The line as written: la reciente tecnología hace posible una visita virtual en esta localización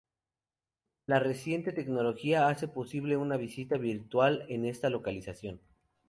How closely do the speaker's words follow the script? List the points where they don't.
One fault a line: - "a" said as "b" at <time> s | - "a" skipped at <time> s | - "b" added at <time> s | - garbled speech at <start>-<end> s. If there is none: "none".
none